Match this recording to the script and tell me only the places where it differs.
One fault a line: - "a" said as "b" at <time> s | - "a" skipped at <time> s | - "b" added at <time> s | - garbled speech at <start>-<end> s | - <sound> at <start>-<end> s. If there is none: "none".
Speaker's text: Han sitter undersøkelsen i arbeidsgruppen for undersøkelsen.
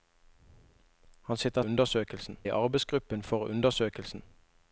none